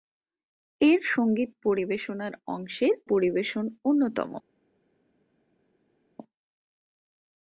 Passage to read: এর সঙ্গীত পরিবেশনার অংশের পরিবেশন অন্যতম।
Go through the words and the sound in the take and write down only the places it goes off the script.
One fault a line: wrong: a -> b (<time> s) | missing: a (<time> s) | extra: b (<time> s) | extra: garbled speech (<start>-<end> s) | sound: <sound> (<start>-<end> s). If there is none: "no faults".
no faults